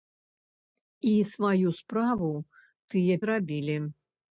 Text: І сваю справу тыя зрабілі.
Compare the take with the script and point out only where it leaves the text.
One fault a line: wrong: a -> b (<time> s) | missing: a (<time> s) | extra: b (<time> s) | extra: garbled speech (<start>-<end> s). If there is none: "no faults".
no faults